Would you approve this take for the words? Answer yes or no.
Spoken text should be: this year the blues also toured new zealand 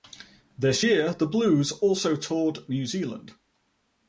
yes